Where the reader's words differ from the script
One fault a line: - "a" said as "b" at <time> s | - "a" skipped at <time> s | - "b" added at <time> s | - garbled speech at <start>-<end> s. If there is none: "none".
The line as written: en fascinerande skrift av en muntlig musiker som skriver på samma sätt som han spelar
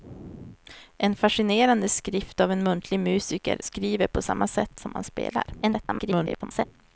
- "som" skipped at 3.6 s
- garbled speech at 5.6-6.7 s